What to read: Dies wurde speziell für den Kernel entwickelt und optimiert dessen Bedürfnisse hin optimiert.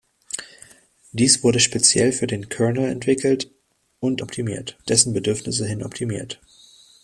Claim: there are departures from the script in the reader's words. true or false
false